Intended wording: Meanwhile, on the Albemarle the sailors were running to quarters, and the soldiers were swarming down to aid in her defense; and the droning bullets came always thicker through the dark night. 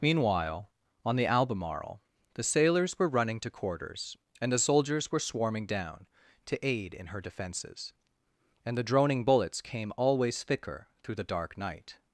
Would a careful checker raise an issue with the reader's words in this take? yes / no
yes